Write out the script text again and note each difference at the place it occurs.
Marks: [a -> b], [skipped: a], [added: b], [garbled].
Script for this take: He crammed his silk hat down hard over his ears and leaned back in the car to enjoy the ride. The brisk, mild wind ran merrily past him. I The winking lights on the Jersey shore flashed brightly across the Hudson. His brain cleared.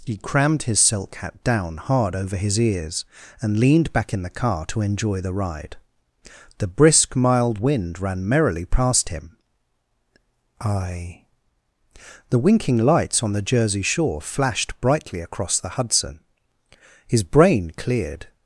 He crammed his silk hat down hard over his ears and leaned back in the car to enjoy the ride. The brisk, mild wind ran merrily past him. I The winking lights on the Jersey shore flashed brightly across the Hudson. His brain cleared.